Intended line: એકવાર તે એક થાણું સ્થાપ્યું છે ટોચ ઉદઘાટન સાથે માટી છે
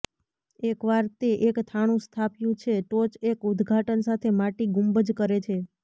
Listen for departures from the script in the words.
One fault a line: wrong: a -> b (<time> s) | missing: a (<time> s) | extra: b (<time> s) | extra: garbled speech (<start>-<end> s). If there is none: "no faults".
extra: એક (3.3 s)
extra: ગુંબજ કરે (4.7 s)